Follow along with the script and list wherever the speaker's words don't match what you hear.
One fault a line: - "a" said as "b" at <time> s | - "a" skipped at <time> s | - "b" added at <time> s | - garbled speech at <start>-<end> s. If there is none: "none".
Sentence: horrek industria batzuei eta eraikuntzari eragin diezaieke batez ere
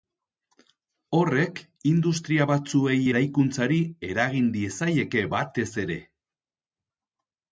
- "eta" skipped at 3.0 s